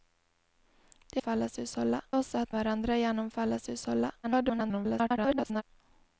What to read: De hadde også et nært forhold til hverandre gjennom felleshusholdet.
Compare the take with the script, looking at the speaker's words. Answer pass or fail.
fail